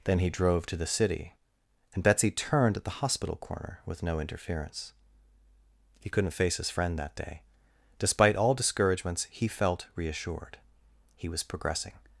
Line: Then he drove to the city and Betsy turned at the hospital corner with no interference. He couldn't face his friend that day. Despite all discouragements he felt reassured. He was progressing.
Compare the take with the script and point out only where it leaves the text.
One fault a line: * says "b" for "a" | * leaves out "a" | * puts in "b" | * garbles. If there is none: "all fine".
all fine